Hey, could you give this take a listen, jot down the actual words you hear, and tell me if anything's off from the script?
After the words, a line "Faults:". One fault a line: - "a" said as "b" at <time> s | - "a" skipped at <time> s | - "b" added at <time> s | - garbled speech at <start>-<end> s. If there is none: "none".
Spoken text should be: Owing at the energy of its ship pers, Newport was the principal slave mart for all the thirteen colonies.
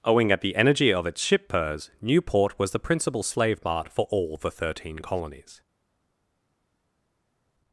Owing at the energy of its ship pers, Newport was the principal slave mart for all the thirteen colonies.
Faults:
none